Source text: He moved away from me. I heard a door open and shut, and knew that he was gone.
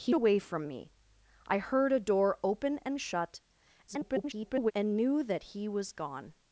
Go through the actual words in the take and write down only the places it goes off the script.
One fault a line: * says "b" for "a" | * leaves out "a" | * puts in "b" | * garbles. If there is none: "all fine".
* leaves out "moved"
* garbles